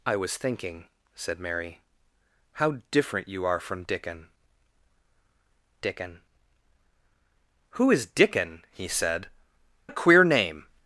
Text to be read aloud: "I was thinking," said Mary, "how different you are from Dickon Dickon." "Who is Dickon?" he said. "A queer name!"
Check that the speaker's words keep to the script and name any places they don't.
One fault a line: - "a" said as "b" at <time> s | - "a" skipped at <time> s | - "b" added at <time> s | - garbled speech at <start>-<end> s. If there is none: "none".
none